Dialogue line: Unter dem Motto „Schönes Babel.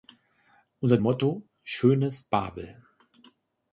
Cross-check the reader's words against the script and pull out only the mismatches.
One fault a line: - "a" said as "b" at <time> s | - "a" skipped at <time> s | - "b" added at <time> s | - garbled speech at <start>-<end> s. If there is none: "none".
- "dem" skipped at 1.0 s